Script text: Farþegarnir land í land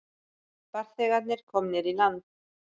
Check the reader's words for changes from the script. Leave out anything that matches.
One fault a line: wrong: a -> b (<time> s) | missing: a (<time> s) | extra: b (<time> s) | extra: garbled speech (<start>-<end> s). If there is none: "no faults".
wrong: land -> komnir (1.5 s)